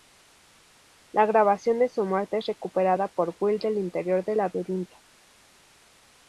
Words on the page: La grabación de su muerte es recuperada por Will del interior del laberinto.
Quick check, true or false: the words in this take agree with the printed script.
true